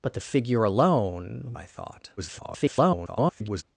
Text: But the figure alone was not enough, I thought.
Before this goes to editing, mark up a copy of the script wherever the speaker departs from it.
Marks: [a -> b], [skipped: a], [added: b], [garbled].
But the figure alone [skipped: was not enough,] I thought. [garbled]